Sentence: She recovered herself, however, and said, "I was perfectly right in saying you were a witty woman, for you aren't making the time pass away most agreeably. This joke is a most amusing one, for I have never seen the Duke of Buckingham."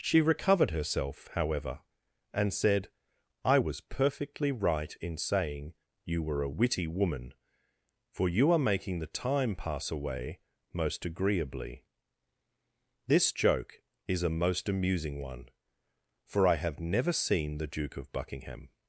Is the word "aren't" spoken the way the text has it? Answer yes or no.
no